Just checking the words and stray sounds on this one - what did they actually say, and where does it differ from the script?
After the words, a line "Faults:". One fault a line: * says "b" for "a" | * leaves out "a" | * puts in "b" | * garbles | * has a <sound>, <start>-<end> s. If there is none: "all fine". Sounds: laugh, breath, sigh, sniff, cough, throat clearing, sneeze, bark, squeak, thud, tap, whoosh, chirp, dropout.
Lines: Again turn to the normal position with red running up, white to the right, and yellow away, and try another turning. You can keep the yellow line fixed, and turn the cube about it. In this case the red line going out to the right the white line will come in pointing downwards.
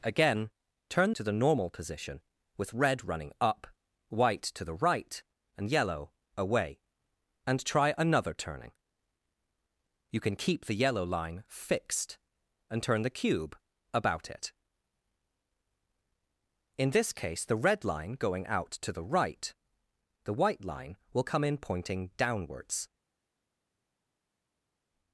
Again turn to the normal position with red running up, white to the right, and yellow away, and try another turning. You can keep the yellow line fixed, and turn the cube about it. In this case the red line going out to the right the white line will come in pointing downwards.
Faults:
all fine